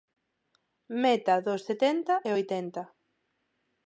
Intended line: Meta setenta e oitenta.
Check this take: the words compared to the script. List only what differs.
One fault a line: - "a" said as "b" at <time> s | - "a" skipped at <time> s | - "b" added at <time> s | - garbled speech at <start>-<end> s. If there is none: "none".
- "dos" added at 1.5 s